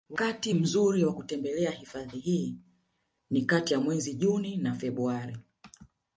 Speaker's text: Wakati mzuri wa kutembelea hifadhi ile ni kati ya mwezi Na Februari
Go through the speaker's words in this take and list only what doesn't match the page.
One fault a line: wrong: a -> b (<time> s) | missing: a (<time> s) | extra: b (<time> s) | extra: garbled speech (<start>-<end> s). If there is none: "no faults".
wrong: ile -> hii (2.2 s)
extra: Juni (4.1 s)